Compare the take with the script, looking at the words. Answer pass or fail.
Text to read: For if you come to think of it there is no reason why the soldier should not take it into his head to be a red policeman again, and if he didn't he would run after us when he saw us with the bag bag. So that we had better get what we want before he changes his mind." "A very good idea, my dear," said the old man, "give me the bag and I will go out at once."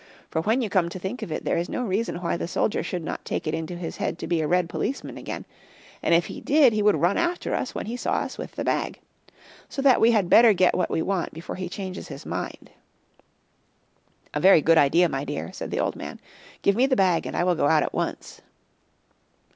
fail